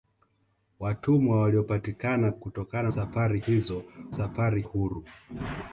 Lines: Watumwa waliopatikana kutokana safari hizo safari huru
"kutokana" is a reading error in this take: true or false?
false